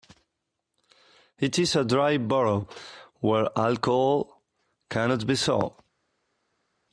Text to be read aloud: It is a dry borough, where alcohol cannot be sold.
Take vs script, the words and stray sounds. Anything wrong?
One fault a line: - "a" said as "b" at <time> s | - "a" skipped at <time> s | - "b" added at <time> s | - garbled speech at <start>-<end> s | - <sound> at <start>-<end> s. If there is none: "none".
none